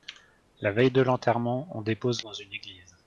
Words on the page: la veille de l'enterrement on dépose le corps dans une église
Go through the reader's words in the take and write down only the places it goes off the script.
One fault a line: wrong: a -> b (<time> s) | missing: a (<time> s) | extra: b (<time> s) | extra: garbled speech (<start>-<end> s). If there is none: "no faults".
missing: le corps (2.2 s)